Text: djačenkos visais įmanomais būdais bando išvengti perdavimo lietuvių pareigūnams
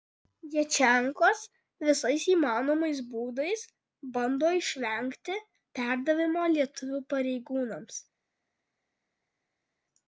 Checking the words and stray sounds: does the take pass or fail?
pass